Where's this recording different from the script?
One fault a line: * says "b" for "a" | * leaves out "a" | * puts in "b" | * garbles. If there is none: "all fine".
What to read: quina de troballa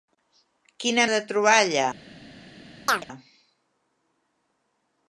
all fine